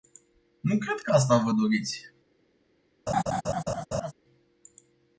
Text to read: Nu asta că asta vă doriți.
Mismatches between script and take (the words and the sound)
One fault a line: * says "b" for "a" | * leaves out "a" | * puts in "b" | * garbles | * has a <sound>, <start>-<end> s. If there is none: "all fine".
* says "cred" for "asta"
* has a laugh, 3.1-4.1 s